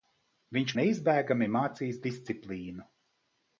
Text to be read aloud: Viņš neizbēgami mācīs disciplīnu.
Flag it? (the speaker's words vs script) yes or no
no